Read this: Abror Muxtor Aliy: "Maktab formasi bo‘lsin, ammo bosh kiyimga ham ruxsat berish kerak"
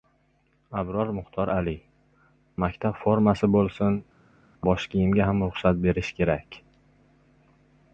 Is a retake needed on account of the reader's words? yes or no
yes